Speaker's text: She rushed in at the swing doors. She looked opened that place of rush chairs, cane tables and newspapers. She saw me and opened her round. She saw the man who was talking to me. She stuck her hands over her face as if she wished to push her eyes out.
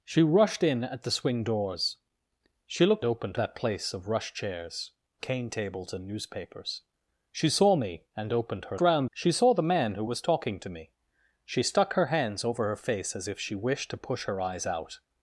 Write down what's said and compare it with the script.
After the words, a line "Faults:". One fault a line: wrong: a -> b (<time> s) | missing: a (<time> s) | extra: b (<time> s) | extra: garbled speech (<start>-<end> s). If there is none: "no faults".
She rushed in at the swing doors. She looked opened that place of rush chairs, cane tables and newspapers. She saw me and opened her round. She saw the man who was talking to me. She stuck her hands over her face as if she wished to push her eyes out.
Faults:
no faults